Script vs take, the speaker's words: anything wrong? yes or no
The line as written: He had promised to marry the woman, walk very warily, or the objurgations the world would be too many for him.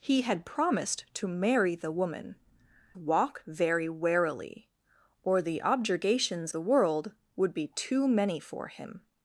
no